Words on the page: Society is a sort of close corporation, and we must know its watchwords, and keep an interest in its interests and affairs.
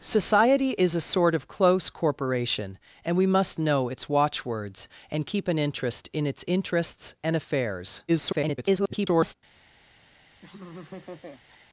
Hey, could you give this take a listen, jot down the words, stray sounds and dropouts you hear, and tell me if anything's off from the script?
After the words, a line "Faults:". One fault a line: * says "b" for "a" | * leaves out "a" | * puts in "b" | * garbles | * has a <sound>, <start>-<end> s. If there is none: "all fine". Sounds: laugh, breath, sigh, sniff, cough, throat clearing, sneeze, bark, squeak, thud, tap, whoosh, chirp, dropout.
Society is a sort of close corporation, and we must know its watchwords, and keep an interest in its interests and affairs. [garbled]
Faults:
* garbles
* has a laugh, 10.4-11.7 s